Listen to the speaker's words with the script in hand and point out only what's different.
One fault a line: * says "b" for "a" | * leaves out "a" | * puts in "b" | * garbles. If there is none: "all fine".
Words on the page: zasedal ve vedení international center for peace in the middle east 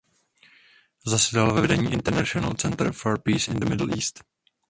all fine